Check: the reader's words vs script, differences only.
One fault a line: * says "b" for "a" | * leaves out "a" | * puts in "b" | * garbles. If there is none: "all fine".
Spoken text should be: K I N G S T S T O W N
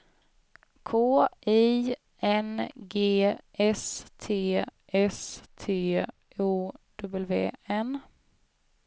all fine